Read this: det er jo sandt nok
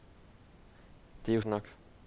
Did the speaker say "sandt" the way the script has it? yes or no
no